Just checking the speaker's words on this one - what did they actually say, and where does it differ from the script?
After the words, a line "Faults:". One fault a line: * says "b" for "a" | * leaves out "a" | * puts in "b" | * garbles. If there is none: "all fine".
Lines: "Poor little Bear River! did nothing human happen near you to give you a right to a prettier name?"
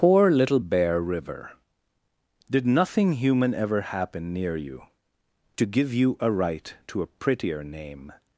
"Poor little Bear River! did nothing human ever happen near you to give you a right to a prettier name?"
Faults:
* puts in "ever"